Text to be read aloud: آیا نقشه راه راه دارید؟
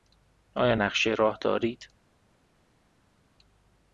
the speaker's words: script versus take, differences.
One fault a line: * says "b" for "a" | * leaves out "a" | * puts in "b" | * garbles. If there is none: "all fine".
* leaves out "راه"